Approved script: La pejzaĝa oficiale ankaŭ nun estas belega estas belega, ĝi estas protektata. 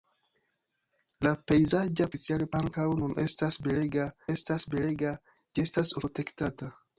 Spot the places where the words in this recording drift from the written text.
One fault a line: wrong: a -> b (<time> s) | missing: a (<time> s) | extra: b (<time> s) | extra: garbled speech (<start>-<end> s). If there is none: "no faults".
no faults